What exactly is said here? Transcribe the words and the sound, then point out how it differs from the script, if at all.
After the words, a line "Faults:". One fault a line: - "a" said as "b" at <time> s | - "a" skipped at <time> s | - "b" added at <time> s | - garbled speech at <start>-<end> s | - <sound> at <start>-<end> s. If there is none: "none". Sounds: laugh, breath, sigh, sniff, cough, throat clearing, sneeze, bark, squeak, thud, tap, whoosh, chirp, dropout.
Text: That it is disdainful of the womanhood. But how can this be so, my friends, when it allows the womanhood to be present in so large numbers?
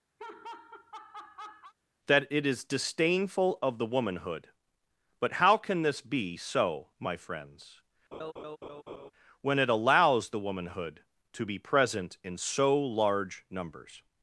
That it is disdainful of the womanhood. But how can this be so, my friends, when it allows the womanhood to be present in so large numbers?
Faults:
- laugh at 0.2-1.7 s
- laugh at 8.1-9.1 s